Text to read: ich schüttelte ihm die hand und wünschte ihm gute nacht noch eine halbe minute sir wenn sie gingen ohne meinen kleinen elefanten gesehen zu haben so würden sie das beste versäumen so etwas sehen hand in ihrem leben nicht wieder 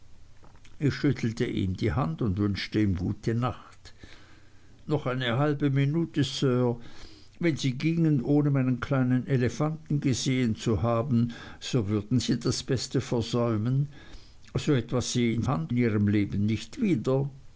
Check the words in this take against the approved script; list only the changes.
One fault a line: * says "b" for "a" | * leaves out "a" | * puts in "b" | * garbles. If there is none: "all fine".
all fine